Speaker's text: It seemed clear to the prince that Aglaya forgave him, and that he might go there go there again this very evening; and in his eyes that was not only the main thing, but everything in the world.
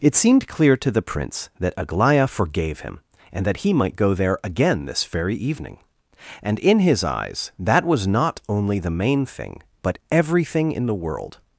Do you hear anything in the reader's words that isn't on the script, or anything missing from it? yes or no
yes